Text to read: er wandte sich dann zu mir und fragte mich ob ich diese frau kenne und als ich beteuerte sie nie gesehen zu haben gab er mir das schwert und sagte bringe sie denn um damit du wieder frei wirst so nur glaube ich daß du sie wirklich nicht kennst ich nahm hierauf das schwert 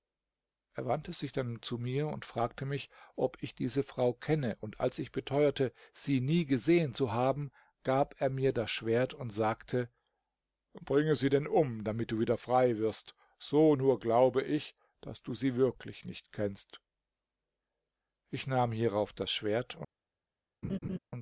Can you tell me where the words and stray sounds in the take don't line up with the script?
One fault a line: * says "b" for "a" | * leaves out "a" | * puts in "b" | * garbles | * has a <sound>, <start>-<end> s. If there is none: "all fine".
* has a laugh, 20.6-21.0 s